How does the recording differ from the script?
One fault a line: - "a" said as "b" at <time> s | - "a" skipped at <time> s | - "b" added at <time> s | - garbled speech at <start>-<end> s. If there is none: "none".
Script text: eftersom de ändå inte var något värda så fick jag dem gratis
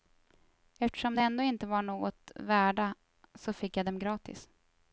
none